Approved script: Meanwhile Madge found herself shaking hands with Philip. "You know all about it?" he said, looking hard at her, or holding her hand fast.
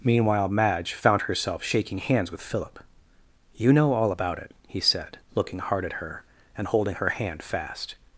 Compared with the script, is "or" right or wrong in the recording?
wrong